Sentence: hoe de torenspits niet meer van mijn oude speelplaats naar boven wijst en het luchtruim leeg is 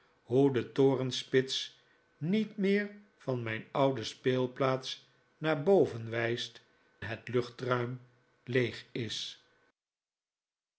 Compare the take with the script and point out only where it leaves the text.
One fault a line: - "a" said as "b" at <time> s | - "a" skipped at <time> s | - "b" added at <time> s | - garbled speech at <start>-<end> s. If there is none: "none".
- "en" skipped at 6.6 s